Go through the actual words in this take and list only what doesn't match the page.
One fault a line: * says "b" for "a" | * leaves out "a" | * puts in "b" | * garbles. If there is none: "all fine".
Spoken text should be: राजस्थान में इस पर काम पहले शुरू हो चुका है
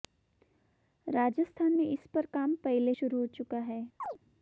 all fine